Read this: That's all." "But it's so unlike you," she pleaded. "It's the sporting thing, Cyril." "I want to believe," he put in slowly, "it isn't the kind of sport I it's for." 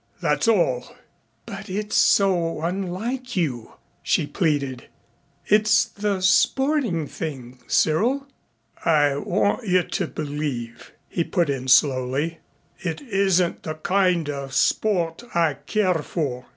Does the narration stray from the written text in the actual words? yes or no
yes